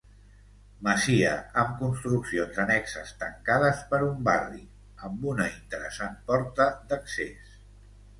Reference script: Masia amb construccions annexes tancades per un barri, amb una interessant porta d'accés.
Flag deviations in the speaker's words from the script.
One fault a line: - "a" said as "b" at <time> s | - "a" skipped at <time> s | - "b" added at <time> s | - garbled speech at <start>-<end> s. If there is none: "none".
none